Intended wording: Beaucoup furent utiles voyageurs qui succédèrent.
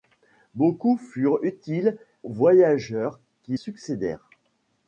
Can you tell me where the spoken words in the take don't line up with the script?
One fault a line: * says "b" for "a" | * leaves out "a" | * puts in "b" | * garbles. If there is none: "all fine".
all fine